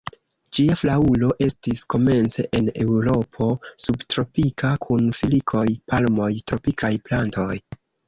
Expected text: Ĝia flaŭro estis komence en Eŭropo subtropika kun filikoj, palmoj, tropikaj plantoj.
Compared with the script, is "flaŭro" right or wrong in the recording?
right